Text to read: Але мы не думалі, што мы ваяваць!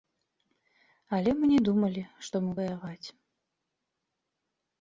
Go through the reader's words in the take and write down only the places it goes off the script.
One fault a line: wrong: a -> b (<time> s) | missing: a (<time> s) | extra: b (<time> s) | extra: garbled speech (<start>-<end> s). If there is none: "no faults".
no faults